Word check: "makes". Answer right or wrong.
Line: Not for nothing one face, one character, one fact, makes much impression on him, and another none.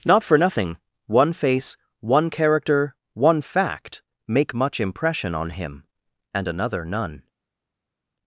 wrong